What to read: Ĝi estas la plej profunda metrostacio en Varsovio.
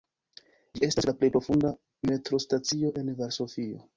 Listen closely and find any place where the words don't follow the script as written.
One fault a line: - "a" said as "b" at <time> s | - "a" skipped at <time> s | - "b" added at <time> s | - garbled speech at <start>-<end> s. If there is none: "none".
none